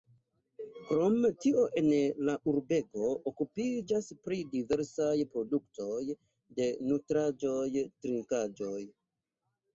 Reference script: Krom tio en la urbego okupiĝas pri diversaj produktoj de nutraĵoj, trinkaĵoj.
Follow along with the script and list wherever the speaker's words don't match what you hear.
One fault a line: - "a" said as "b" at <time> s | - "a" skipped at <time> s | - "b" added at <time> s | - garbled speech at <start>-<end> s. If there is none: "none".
none